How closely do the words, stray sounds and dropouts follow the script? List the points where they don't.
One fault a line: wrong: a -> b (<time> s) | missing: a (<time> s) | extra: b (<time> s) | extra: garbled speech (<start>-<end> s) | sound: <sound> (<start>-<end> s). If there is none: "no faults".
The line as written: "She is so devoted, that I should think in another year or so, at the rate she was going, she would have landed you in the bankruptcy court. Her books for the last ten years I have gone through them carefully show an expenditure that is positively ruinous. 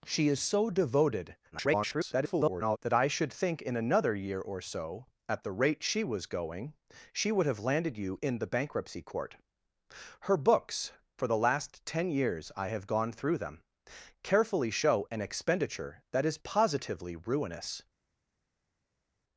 extra: garbled speech (1.5-2.8 s)